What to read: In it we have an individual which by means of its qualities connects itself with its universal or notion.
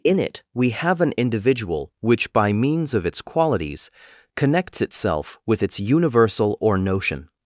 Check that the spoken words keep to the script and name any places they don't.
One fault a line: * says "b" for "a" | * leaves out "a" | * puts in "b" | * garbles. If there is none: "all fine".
all fine